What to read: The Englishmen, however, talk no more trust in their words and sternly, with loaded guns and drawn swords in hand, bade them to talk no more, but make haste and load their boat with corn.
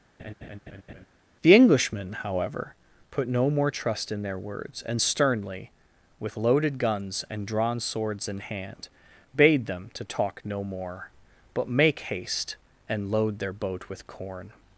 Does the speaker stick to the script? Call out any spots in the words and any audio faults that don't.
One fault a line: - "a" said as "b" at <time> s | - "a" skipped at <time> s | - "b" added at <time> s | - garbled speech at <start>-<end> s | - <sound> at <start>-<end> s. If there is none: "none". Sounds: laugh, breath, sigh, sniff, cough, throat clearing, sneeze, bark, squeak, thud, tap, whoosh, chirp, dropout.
- laugh at 0.2-1.1 s
- "talk" said as "put" at 3.1 s